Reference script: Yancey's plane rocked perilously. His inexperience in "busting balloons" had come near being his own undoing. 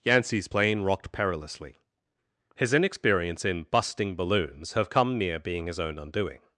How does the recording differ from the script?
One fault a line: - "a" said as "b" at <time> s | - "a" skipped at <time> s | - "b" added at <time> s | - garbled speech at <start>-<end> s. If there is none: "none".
- "had" said as "have" at 4.7 s